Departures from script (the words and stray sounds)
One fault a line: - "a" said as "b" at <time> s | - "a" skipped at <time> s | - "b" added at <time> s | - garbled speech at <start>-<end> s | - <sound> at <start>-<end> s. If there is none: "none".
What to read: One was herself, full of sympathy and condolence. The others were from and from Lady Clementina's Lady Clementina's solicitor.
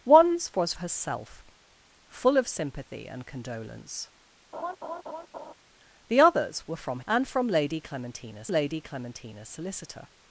- laugh at 4.5-5.5 s